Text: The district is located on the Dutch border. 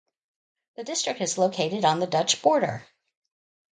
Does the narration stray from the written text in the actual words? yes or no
no